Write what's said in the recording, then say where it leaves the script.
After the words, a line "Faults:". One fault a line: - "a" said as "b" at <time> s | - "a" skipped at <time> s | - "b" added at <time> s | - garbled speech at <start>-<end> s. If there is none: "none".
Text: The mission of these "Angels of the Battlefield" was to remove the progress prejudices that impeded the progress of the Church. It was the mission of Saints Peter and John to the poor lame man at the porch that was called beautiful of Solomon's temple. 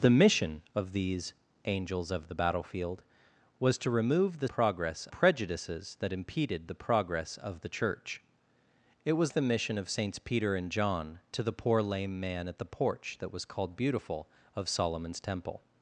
The mission of these "Angels of the Battlefield" was to remove the progress prejudices that impeded the progress of the Church. It was the mission of Saints Peter and John to the poor lame man at the porch that was called beautiful of Solomon's temple.
Faults:
none